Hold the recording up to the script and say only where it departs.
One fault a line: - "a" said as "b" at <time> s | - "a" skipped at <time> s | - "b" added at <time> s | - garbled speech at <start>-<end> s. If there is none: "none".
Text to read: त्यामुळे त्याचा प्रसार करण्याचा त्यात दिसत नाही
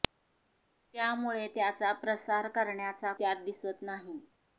none